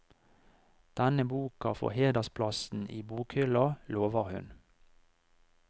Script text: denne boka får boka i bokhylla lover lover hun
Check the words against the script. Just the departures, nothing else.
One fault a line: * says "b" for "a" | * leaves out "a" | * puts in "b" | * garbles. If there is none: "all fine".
* says "hedersplassen" for "boka"
* leaves out "lover"